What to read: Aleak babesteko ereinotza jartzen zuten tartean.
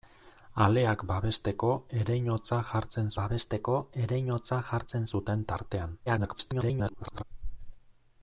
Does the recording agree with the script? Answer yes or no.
no